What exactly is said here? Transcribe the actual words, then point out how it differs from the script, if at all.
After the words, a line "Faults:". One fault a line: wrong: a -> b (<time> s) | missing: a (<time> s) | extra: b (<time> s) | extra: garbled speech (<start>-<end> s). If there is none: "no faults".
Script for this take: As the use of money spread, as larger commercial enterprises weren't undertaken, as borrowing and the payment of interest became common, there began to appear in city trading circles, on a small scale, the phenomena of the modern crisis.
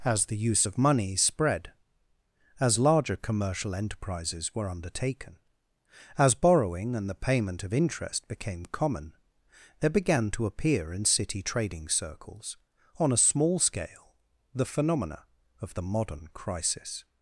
As the use of money spread, as larger commercial enterprises were undertaken, as borrowing and the payment of interest became common, there began to appear in city trading circles, on a small scale, the phenomena of the modern crisis.
Faults:
wrong: weren't -> were (4.5 s)